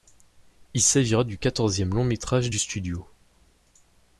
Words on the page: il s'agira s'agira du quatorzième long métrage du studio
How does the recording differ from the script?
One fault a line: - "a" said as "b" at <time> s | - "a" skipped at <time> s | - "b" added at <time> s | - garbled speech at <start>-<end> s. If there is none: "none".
- "s'agira" skipped at 1.2 s